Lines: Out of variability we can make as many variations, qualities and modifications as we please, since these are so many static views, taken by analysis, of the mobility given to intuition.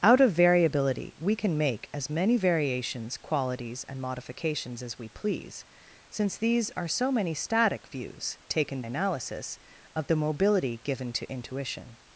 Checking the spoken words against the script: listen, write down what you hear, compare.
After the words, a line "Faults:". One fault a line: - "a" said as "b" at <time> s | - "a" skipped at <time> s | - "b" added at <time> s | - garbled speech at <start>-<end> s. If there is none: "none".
Out of variability we can make as many variations, qualities and modifications as we please, since these are so many static views, taken analysis, of the mobility given to intuition.
Faults:
- "by" skipped at 8.8 s